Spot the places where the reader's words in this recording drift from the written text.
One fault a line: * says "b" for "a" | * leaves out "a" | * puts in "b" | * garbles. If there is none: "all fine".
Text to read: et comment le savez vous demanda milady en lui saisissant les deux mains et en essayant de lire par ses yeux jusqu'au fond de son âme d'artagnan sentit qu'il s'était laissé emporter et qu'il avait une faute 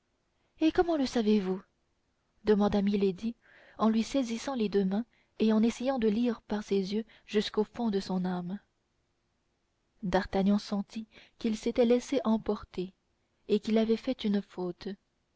* puts in "fait"